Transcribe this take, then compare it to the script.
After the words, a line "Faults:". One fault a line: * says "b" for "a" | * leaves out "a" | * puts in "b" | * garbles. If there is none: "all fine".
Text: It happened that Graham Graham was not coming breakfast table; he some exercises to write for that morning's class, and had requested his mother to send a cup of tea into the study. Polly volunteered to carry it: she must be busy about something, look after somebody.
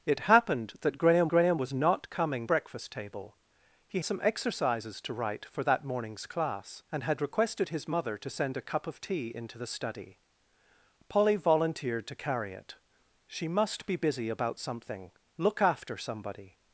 It happened that Graham Graham was not coming breakfast table; he some exercises to write for that morning's class, and had requested his mother to send a cup of tea into the study. Polly volunteered to carry it: she must be busy about something, look after somebody.
Faults:
all fine